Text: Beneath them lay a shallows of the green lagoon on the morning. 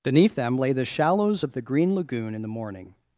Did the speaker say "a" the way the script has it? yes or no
no